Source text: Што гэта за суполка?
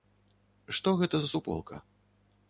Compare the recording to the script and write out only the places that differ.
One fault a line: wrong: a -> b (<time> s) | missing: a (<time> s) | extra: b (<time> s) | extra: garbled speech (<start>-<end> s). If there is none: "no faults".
no faults